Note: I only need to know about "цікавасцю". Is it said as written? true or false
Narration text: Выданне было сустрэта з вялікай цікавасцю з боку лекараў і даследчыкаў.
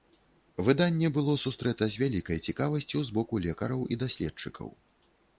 true